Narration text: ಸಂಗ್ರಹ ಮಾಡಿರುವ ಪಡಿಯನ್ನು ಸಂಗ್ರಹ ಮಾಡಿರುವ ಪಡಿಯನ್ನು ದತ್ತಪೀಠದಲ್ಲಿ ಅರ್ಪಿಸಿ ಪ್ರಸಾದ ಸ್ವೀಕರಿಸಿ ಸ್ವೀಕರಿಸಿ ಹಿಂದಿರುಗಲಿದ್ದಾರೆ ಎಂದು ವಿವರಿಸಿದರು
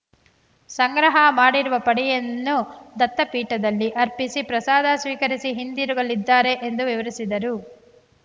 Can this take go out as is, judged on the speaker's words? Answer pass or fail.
fail